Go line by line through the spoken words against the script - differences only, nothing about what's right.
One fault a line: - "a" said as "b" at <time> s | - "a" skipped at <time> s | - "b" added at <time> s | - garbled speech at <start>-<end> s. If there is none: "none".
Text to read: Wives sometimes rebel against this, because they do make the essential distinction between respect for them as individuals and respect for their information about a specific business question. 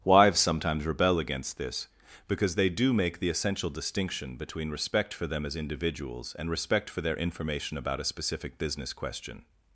none